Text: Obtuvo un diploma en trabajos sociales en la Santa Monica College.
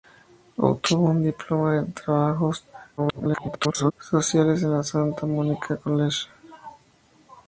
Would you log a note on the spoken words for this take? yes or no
yes